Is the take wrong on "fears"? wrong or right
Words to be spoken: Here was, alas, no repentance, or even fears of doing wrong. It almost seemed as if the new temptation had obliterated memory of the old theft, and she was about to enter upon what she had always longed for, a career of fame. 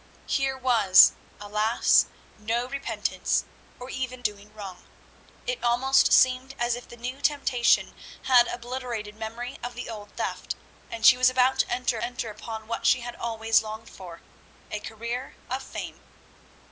wrong